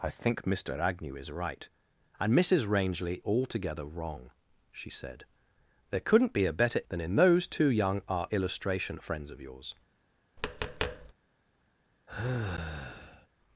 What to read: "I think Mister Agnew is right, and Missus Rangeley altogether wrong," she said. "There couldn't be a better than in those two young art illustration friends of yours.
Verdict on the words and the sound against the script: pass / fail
fail